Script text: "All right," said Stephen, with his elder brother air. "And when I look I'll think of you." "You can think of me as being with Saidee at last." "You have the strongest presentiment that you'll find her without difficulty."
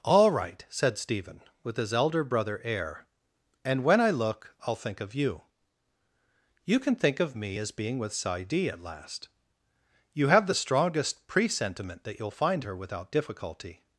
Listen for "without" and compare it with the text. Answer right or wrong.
right